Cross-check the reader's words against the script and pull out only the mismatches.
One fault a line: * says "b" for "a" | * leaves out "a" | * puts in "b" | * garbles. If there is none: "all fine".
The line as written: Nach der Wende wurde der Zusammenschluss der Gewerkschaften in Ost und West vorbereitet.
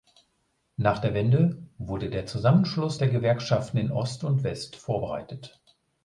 all fine